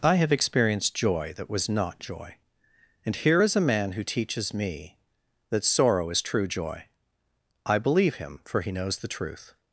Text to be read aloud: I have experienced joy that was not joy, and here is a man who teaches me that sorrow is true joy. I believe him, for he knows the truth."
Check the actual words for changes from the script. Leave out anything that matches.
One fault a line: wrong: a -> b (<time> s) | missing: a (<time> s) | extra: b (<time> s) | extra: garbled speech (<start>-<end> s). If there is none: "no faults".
no faults